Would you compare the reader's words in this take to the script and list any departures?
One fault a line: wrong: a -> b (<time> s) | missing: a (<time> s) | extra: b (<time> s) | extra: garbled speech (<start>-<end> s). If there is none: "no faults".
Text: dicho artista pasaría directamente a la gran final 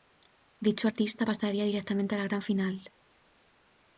no faults